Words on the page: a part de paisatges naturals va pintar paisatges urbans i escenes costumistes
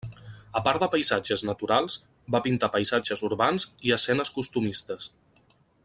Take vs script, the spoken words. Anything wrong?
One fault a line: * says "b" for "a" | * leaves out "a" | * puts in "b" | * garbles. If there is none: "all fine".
all fine